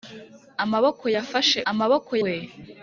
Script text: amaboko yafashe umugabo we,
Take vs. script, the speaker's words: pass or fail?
fail